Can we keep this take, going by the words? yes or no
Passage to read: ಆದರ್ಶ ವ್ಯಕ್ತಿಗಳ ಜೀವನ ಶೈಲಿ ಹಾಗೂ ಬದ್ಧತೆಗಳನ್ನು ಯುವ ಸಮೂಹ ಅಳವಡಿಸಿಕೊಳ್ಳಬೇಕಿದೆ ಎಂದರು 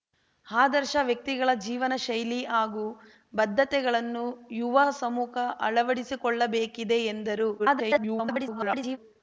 no